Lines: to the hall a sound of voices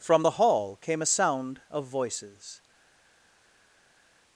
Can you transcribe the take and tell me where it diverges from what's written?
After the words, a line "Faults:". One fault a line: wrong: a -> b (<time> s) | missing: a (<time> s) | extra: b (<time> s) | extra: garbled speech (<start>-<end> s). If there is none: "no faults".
from the hall came a sound of voices
Faults:
wrong: to -> from (0.0 s)
extra: came (0.8 s)